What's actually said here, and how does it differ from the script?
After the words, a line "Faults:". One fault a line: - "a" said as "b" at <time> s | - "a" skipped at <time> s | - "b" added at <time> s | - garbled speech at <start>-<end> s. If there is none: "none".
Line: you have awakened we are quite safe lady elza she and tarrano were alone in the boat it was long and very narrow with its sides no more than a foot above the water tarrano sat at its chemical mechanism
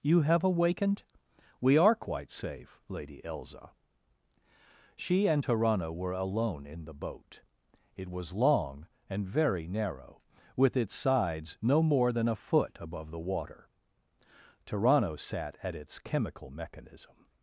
you have awakened we are quite safe lady elza she and tarrano were alone in the boat it was long and very narrow with its sides no more than a foot above the water tarrano sat at its chemical mechanism
Faults:
none